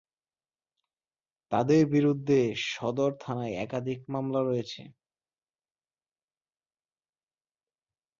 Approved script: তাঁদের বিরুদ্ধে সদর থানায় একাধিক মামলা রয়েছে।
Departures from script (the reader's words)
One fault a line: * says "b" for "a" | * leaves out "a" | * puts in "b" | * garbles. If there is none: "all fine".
all fine